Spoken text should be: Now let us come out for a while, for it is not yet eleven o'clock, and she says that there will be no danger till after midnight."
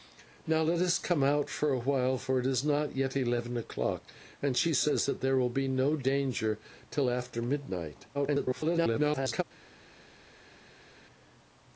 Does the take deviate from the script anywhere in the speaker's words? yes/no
yes